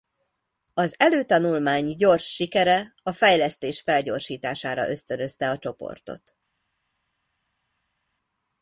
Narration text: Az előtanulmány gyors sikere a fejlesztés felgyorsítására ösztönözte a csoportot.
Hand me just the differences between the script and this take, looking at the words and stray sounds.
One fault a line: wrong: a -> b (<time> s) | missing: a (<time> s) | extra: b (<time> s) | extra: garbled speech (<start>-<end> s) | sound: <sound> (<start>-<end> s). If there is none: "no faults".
no faults